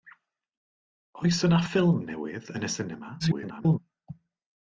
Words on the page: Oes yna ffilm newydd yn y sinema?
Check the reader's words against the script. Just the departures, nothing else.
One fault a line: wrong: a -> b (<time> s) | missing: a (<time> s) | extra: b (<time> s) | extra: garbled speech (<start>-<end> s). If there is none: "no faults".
extra: garbled speech (3.2-3.8 s)